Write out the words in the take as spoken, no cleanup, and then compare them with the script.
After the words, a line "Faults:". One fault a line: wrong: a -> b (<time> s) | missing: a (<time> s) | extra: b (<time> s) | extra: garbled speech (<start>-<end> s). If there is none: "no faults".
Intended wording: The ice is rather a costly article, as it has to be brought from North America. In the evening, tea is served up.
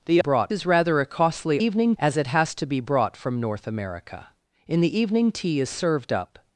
The brought is rather a costly evening, as it has to be brought from North America. In the evening, tea is served up.
Faults:
wrong: ice -> brought (0.2 s)
wrong: article -> evening (1.6 s)